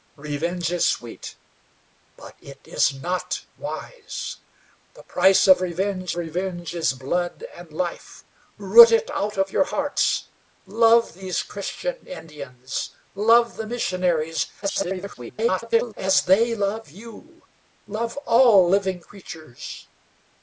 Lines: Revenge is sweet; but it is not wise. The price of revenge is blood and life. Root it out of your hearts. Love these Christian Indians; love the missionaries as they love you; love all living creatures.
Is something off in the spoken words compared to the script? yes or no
yes